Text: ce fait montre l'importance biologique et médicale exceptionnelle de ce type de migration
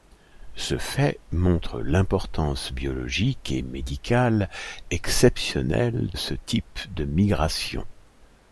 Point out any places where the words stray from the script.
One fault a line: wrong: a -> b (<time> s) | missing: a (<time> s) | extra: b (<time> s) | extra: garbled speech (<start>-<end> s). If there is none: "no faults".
missing: de (6.1 s)